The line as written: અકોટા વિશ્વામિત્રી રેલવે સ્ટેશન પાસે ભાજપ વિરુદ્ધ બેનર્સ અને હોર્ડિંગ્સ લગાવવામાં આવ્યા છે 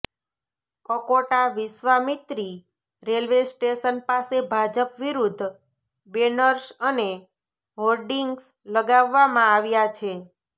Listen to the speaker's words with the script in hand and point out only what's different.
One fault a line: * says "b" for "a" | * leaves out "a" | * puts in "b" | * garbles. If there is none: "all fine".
all fine